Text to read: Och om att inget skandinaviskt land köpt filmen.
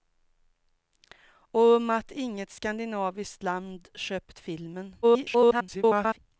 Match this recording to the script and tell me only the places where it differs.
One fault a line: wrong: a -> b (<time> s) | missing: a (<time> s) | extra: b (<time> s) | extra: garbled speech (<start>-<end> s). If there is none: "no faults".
extra: garbled speech (5.0-6.2 s)